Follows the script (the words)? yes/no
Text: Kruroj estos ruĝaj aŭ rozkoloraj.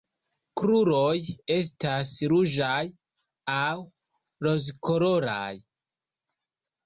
no